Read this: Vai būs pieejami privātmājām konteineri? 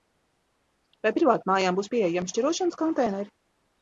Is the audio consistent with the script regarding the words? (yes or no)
no